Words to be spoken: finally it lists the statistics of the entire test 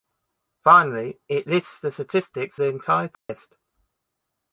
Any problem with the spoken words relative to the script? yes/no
yes